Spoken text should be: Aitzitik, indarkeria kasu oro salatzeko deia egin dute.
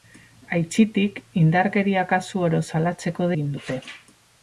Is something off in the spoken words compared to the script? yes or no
yes